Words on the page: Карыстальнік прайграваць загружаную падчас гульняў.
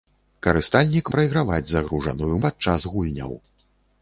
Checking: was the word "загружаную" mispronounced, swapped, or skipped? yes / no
no